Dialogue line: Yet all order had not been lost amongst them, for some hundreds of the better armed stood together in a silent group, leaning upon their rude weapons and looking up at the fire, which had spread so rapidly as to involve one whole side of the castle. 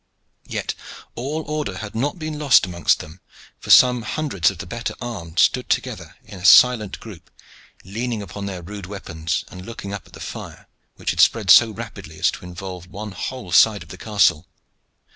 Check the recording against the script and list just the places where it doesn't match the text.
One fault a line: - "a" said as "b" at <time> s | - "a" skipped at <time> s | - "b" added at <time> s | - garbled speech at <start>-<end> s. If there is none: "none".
none